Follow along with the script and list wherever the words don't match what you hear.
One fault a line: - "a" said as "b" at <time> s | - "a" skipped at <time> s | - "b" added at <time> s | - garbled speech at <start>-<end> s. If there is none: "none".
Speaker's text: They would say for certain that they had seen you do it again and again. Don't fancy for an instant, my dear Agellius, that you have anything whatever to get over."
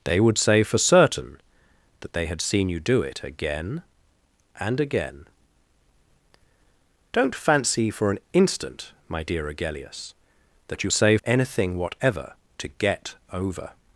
- "have" said as "say" at 10.9 s